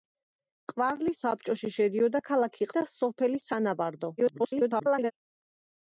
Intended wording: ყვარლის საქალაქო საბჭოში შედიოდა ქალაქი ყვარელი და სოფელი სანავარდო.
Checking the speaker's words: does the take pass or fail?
fail